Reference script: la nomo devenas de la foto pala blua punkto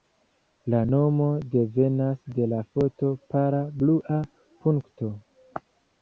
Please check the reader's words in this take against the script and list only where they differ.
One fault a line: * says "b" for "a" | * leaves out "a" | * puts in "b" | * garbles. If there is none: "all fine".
all fine